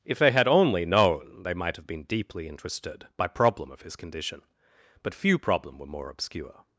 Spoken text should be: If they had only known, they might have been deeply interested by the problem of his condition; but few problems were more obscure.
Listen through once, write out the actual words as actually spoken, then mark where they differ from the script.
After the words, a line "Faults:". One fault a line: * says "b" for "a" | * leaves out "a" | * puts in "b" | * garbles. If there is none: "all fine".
If they had only known, they might have been deeply interested by problem of his condition; but few problem were more obscure.
Faults:
* leaves out "the"
* says "problem" for "problems"